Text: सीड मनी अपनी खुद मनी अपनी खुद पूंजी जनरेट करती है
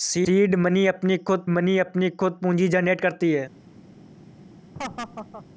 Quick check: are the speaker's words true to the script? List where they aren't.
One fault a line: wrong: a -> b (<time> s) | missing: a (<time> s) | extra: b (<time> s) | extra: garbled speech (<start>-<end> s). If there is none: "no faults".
no faults